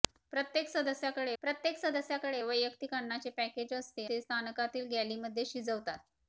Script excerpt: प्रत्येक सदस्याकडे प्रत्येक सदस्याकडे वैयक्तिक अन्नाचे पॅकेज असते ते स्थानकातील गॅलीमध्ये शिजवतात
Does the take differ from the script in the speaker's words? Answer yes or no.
no